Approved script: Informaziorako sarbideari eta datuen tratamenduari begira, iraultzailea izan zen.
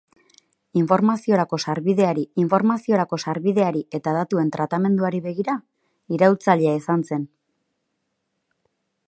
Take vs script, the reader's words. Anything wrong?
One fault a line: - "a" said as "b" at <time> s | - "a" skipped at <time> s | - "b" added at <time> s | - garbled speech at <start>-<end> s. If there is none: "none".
- "informaziorako sarbideari" added at 2.4 s